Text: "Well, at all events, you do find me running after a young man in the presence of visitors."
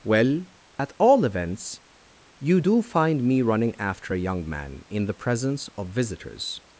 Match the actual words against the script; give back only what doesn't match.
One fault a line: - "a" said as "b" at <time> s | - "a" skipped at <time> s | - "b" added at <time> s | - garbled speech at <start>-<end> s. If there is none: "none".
none